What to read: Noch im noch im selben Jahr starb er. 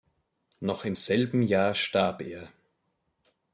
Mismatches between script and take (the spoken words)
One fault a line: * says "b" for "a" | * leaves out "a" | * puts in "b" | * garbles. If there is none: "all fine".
* leaves out "noch im"